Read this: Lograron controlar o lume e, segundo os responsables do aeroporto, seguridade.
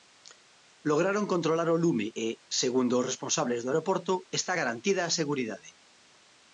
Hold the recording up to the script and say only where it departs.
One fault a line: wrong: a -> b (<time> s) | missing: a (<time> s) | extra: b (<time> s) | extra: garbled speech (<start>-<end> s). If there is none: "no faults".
extra: está garantida a (4.4 s)